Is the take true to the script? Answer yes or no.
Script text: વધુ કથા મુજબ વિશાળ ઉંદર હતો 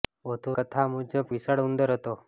yes